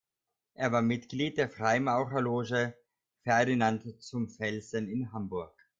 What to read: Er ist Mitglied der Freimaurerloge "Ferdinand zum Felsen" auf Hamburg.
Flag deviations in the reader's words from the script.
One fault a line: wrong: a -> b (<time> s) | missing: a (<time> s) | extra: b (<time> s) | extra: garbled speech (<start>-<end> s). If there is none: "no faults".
wrong: ist -> war (0.7 s)
wrong: auf -> in (4.9 s)